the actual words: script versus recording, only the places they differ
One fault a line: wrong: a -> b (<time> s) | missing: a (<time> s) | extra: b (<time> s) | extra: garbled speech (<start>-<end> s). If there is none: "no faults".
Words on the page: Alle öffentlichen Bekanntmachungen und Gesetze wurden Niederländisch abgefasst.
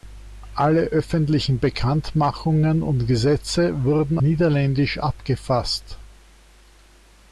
no faults